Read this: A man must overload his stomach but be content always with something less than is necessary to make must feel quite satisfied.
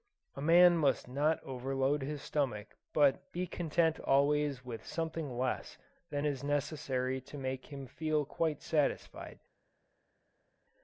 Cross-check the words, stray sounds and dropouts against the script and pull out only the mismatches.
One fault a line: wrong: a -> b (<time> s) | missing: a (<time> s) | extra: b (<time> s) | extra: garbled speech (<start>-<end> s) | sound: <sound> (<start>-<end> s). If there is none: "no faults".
extra: not (1.1 s)
wrong: must -> him (7.7 s)